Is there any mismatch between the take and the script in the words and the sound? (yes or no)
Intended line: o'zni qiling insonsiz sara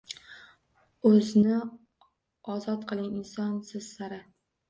yes